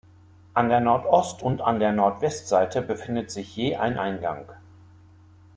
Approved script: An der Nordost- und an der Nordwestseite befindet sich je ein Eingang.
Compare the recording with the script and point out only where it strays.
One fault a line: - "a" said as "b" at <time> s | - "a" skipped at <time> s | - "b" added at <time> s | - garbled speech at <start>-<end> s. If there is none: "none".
none